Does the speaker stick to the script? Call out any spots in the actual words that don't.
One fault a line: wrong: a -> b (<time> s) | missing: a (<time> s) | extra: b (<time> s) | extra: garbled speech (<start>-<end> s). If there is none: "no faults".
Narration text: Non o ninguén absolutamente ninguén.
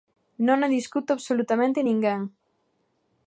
wrong: ninguén -> discute (0.8 s)